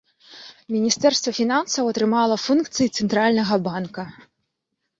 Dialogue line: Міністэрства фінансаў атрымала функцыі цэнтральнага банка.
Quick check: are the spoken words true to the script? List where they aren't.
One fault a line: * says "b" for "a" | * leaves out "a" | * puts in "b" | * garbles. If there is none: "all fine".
all fine